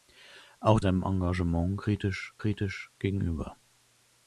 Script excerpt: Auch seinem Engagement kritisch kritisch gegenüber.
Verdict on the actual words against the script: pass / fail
pass